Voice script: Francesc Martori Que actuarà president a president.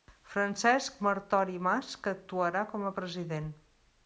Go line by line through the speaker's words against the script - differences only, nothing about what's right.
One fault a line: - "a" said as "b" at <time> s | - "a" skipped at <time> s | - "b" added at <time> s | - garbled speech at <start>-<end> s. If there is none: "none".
- "Mas" added at 1.7 s
- "president" said as "com" at 2.7 s